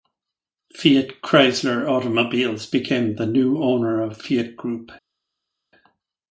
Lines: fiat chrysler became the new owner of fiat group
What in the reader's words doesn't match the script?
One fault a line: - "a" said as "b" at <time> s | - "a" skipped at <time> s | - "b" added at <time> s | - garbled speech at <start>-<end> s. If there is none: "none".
- "automobiles" added at 1.9 s